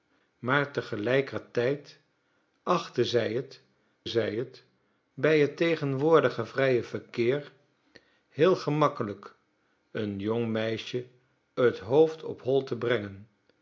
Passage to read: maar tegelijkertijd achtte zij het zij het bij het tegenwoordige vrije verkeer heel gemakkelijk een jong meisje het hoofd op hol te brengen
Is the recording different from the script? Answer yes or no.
no